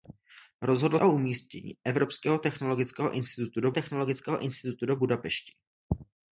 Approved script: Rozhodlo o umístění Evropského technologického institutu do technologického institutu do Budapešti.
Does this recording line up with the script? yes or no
yes